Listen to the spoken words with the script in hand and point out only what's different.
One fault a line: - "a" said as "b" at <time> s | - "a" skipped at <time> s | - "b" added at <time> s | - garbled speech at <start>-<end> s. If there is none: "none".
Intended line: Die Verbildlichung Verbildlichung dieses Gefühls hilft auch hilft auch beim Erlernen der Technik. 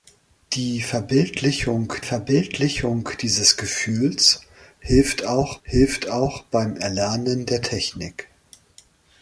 none